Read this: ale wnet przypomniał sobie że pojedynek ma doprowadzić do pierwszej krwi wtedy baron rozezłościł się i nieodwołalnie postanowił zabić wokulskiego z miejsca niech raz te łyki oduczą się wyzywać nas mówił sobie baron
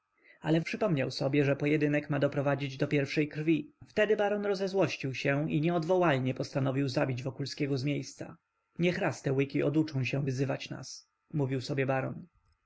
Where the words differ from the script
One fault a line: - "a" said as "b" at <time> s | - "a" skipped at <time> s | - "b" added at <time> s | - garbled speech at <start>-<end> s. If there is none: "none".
- "wnet" skipped at 0.6 s